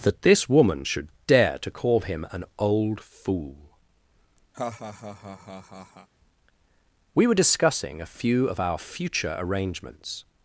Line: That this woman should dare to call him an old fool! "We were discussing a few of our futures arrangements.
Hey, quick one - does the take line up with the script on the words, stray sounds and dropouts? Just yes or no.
no